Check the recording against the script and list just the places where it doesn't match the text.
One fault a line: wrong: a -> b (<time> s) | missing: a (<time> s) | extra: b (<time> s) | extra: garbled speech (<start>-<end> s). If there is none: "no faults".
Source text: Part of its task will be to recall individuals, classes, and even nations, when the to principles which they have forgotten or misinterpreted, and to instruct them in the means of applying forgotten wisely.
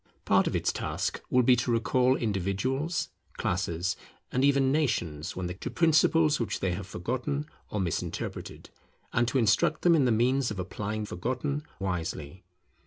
no faults